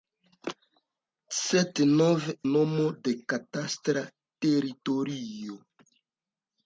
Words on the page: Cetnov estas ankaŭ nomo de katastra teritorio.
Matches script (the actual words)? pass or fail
fail